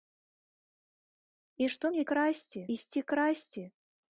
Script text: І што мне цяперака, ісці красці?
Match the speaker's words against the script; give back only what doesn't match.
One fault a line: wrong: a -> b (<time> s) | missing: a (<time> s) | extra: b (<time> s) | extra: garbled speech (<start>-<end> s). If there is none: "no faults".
wrong: цяперака -> красці (2.1 s)